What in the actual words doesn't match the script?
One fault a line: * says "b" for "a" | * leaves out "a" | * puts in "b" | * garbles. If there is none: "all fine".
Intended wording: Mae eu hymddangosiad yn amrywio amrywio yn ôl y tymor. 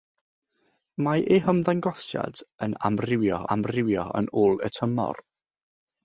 all fine